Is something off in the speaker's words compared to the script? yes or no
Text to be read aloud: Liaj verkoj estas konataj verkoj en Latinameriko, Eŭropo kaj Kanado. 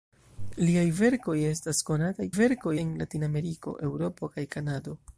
no